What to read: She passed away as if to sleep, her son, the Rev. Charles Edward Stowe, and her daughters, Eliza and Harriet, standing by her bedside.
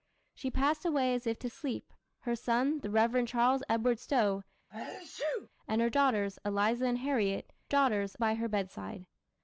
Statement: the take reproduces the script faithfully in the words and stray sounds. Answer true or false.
false